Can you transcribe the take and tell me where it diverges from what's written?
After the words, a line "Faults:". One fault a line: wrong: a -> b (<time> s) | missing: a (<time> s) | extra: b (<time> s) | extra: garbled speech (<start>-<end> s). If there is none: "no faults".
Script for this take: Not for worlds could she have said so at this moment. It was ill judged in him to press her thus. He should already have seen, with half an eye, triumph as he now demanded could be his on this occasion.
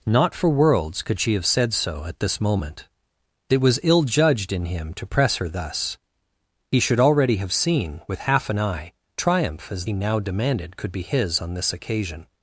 Not for worlds could she have said so at this moment. It was ill judged in him to press her thus. He should already have seen, with half an eye, triumph as he now demanded could be his on this occasion.
Faults:
no faults